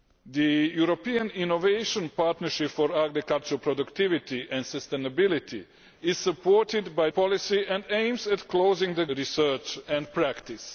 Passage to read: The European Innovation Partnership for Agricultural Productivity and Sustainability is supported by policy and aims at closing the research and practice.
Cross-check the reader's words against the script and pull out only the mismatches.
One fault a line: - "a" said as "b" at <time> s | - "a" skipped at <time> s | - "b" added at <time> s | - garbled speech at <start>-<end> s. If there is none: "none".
none